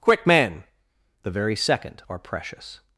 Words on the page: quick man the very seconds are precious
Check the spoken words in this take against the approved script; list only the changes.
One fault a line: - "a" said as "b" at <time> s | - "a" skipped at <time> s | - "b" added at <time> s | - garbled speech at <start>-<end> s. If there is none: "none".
- "seconds" said as "second" at 1.6 s